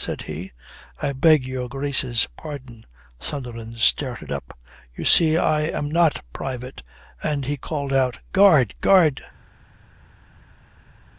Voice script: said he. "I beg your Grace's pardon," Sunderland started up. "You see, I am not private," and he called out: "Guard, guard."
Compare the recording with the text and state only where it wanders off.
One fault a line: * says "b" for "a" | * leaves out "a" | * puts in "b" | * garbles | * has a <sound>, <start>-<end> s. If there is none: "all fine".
all fine